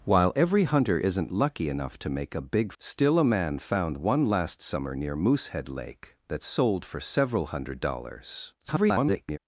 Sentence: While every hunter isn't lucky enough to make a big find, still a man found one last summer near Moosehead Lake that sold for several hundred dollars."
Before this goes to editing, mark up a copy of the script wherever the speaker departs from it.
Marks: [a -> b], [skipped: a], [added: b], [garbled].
While every hunter isn't lucky enough to make a big [skipped: find,] still a man found one last summer near Moosehead Lake that sold for several hundred dollars." [garbled]